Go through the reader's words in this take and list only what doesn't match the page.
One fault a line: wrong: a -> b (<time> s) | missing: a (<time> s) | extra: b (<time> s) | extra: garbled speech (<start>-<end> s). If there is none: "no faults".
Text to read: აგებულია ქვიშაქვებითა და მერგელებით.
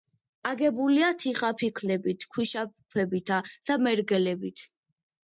extra: თიხაფიქლებით (1.2 s)